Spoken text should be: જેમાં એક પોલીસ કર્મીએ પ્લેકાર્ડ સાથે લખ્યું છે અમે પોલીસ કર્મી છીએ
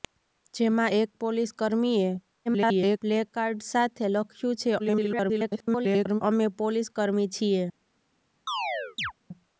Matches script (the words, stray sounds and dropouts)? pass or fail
fail